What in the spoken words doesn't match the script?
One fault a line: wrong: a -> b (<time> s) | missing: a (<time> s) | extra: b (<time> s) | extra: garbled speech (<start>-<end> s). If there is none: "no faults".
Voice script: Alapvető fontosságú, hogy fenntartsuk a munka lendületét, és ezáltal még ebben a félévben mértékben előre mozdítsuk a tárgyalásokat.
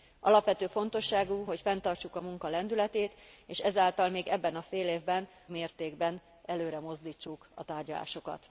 no faults